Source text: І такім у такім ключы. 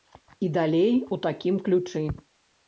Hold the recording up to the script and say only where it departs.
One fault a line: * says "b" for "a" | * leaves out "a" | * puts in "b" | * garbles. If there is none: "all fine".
* says "далей" for "такім"